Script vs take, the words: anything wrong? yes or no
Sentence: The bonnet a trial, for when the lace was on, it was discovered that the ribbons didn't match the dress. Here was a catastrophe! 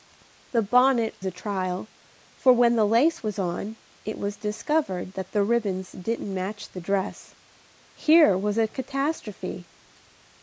no